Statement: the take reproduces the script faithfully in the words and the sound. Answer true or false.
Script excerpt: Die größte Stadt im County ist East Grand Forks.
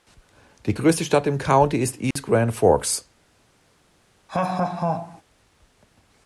false